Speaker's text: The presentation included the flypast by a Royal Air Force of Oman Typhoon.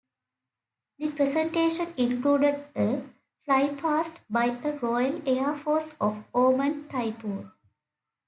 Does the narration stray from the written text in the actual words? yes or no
yes